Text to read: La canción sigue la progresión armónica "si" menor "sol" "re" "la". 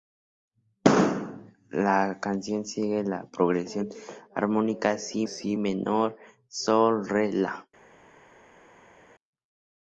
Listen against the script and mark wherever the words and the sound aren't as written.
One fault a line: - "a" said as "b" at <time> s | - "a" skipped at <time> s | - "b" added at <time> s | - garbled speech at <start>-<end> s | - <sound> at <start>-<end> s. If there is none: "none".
- "si" added at 5.3 s